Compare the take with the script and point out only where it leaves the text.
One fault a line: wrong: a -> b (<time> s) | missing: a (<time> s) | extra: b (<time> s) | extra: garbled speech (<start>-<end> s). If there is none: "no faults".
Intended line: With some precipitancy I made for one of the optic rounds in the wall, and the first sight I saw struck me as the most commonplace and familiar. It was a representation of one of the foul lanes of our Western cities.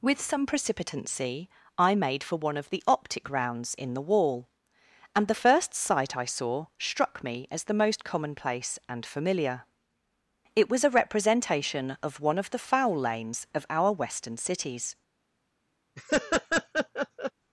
no faults